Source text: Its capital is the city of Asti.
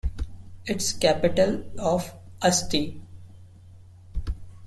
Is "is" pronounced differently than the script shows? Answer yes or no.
yes